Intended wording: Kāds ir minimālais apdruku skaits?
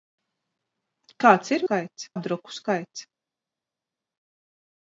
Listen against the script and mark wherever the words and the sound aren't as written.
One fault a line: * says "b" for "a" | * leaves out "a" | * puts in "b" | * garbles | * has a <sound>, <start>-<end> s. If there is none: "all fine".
* says "skaits" for "minimālais"